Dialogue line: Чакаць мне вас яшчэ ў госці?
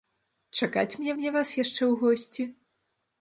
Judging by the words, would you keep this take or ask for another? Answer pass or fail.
fail